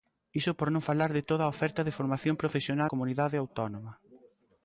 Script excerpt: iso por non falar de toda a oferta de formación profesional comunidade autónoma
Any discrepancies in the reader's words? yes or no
no